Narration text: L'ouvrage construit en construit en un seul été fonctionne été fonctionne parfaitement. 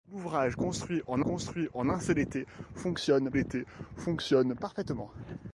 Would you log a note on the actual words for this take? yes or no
no